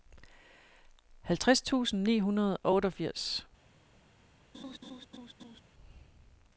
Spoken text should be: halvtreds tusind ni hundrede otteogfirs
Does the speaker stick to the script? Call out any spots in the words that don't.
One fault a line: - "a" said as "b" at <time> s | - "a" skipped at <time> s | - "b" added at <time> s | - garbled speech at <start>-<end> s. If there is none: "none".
- "og" added at 2.6 s